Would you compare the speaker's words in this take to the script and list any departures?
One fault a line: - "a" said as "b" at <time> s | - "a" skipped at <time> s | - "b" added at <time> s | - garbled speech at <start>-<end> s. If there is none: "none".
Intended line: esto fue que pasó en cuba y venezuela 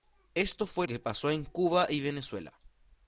none